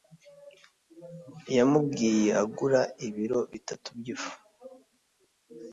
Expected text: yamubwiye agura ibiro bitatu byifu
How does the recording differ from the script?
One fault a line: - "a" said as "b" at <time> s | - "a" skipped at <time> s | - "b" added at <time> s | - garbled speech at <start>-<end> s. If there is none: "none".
none